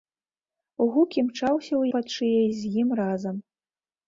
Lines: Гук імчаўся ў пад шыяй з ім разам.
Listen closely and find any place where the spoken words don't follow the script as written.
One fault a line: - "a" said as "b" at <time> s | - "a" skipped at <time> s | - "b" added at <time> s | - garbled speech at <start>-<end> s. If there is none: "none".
none